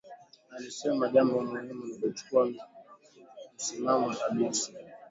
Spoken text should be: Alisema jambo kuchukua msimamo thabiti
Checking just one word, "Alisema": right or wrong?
right